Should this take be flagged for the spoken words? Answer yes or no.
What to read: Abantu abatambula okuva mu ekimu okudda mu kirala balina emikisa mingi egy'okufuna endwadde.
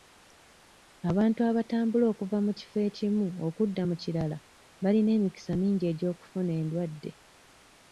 yes